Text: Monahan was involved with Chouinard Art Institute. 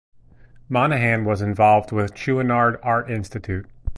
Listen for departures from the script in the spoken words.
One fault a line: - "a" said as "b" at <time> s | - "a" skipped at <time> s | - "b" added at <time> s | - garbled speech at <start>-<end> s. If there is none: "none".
none